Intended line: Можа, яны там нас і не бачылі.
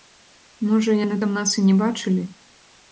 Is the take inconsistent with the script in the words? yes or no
no